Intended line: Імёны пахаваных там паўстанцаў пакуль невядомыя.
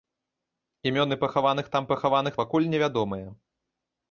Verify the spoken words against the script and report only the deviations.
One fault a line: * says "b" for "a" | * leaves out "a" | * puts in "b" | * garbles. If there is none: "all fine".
* says "пахаваных" for "паўстанцаў"